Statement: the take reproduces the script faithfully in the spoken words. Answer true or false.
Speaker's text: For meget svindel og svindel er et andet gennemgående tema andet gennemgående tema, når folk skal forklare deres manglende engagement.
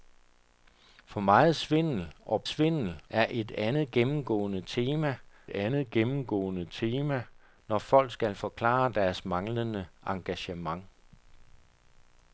true